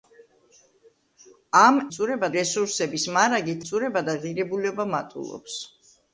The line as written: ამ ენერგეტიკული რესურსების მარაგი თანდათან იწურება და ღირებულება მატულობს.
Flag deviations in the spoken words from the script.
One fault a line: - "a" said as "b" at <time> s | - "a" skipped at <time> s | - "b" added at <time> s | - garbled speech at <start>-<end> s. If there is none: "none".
- "ენერგეტიკული" said as "იწურება" at 1.9 s
- "თანდათან" skipped at 3.6 s